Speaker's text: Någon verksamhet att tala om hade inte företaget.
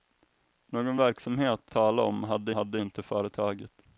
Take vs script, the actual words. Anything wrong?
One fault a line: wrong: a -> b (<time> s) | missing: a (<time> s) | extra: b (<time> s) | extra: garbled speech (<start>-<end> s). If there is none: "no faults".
missing: att (1.7 s)
extra: hade (2.5 s)